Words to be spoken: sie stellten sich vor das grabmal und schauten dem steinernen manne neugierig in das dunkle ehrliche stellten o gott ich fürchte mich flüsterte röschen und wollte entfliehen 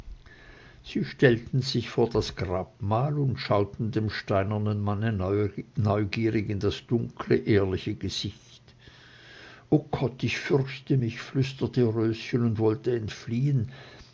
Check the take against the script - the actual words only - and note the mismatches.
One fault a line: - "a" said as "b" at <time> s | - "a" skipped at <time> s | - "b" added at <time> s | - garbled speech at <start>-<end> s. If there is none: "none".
- "stellten" said as "gesicht" at 7.9 s